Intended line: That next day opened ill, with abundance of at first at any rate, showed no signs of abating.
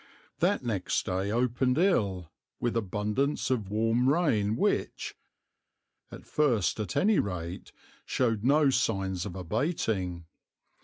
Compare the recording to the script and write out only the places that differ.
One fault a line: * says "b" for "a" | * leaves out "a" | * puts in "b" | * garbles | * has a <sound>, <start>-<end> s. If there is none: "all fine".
* puts in "warm rain which"